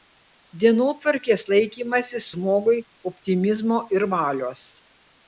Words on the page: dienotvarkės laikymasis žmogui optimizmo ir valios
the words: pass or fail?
pass